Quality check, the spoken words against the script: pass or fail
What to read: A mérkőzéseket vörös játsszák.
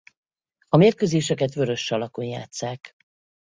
fail